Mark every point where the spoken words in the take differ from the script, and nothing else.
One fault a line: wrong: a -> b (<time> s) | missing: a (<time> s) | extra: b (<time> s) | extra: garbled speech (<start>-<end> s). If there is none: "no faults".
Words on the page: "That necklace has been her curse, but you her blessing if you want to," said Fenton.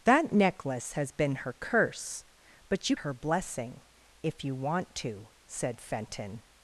no faults